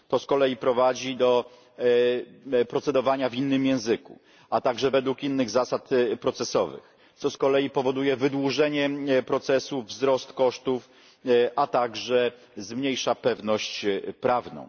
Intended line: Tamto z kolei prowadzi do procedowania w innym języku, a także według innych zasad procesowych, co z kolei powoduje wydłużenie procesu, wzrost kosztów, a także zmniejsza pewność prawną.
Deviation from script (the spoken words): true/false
true